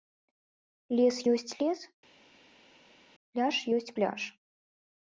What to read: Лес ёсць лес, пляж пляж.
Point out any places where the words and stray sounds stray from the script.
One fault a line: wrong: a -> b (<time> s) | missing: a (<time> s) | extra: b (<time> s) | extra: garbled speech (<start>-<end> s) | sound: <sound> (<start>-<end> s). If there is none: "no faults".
extra: ёсць (3.8 s)